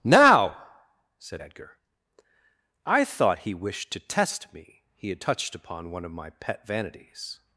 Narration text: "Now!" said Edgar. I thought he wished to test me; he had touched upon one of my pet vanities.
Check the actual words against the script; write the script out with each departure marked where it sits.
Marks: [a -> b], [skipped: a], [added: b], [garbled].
"Now!" said Edgar. I thought he wished to test me; he had touched upon one of my pet vanities.